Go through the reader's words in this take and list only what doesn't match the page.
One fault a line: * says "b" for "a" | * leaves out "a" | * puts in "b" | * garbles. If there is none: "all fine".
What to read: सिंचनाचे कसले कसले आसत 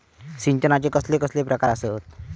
* puts in "प्रकार"